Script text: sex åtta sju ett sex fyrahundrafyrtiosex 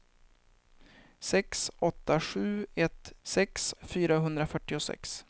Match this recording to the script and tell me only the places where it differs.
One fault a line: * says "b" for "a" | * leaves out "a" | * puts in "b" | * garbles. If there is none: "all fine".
all fine